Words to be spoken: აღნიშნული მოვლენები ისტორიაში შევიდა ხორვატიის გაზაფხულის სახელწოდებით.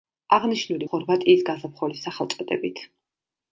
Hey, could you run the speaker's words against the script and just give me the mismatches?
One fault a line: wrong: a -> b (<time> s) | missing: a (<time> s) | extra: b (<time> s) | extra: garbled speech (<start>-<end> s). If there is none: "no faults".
missing: მოვლენები ისტორიაში შევიდა (0.9 s)